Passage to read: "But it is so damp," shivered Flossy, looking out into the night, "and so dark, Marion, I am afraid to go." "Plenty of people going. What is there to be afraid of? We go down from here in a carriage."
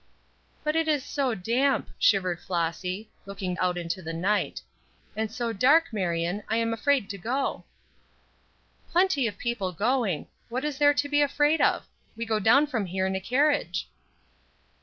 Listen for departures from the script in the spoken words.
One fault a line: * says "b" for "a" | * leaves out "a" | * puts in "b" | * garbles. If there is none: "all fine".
all fine